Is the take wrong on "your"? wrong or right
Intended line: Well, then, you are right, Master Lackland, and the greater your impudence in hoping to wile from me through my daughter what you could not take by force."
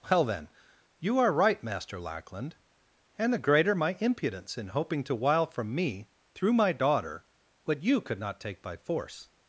wrong